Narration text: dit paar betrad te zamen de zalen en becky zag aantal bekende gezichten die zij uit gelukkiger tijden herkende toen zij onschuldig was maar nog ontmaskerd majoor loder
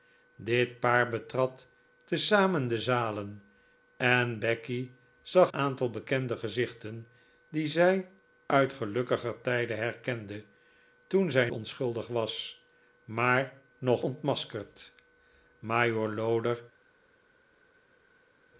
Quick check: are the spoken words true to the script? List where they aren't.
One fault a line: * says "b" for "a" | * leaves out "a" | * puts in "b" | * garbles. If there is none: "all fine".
all fine